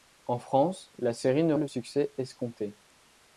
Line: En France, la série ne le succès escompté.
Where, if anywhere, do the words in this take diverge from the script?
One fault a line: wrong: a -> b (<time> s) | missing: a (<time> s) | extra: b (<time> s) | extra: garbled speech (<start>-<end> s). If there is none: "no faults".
no faults